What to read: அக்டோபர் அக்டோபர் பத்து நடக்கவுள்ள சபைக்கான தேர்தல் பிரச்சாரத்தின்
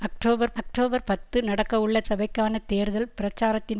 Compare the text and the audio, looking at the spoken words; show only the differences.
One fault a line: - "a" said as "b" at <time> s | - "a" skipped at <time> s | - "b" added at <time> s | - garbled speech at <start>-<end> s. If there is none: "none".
none